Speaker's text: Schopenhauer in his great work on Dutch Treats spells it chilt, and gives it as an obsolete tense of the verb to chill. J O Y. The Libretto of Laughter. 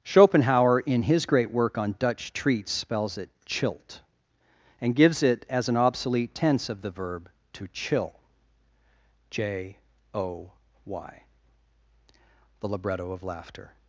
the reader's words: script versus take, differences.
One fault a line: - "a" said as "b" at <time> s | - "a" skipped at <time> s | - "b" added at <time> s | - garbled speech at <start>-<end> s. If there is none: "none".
none